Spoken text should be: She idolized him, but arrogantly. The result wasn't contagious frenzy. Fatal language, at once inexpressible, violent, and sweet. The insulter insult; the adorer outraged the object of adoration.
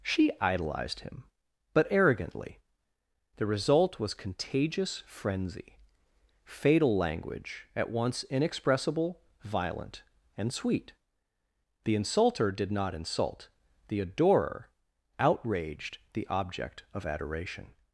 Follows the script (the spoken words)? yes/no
no